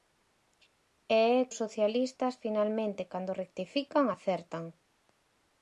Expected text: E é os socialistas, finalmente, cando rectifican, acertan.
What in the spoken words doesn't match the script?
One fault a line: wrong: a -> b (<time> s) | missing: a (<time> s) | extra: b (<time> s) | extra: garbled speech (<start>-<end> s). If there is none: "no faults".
no faults